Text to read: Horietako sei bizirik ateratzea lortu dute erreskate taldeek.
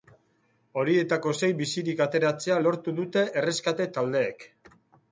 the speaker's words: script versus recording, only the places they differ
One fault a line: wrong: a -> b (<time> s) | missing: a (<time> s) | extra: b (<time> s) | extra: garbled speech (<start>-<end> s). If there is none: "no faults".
no faults